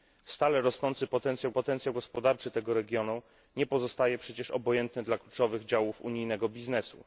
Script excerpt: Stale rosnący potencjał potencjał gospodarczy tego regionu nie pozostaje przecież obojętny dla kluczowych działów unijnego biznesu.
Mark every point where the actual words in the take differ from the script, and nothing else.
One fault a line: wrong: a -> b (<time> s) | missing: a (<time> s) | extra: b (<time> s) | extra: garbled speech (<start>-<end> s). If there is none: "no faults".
no faults